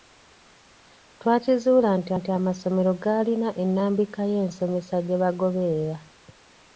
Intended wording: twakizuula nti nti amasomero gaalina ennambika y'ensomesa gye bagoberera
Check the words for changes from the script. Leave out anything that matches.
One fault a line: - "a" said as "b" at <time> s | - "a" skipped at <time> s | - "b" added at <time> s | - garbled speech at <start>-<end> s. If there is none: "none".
none